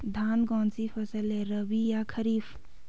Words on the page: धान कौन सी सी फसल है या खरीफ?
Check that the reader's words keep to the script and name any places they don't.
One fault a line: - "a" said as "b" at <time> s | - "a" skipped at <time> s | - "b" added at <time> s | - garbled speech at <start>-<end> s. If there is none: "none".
- "सी" skipped at 0.9 s
- "रबी" added at 1.4 s